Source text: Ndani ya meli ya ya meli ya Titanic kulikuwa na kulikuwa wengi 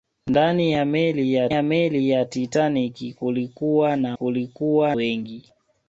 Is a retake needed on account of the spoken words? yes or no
no